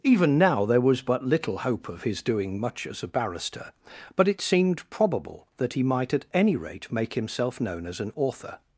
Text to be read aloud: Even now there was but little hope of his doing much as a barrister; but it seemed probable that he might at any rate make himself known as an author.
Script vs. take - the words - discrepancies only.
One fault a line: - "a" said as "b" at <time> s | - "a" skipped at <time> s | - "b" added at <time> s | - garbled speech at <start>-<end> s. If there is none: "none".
none